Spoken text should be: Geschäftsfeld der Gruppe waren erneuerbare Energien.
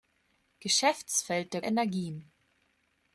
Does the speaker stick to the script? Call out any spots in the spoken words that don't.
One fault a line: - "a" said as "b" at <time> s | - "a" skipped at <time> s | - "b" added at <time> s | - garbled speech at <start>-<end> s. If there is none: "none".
- "Gruppe waren erneuerbare" skipped at 1.6 s